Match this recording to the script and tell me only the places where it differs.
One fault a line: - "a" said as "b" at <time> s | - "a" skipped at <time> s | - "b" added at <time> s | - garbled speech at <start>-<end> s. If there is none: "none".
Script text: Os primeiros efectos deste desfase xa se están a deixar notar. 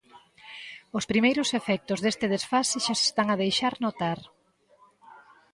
none